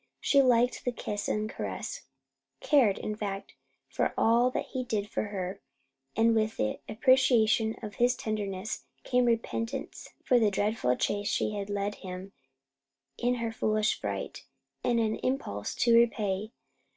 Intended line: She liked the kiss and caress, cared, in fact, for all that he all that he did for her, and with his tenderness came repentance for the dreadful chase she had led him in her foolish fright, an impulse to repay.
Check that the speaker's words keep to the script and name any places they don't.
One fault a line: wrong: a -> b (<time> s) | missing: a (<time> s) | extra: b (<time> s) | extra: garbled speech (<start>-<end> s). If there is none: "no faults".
missing: all that he (4.8 s)
extra: the appreciation of (6.6 s)
extra: and (14.8 s)